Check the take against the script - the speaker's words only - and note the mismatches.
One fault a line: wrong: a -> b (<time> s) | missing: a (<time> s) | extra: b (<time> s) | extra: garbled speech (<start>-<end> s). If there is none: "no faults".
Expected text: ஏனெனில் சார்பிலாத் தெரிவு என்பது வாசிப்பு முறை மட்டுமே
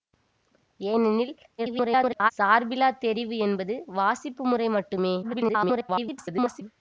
extra: garbled speech (1.6-2.3 s)
extra: garbled speech (5.2-6.6 s)